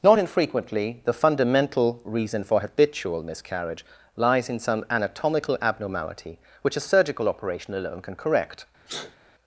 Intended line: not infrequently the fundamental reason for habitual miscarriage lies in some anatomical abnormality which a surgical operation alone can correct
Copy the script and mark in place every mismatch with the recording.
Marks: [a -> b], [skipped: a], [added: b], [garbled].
not infrequently the fundamental reason for habitual miscarriage lies in some anatomical abnormality which a surgical operation alone can correct